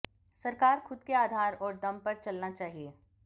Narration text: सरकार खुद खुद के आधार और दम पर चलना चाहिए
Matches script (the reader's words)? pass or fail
fail